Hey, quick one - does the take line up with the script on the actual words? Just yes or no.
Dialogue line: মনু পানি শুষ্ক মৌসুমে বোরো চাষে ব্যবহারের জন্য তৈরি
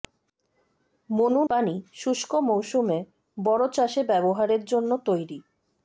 yes